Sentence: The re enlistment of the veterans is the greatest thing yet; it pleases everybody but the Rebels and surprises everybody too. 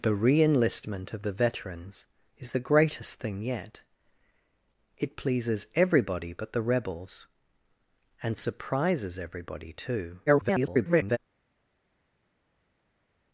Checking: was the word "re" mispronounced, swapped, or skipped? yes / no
no